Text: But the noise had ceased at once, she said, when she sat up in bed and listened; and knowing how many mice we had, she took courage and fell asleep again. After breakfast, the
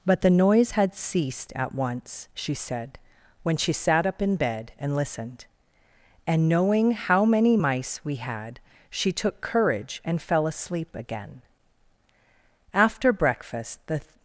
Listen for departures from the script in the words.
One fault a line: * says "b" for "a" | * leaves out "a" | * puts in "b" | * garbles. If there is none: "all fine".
all fine